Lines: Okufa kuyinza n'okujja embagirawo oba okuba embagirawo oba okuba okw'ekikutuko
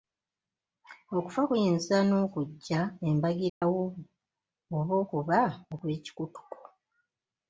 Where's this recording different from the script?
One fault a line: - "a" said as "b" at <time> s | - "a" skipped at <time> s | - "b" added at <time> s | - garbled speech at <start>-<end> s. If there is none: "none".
- "embagirawo oba okuba" skipped at 5.4 s